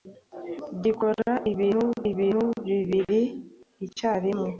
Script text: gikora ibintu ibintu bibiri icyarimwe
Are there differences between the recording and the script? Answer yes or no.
no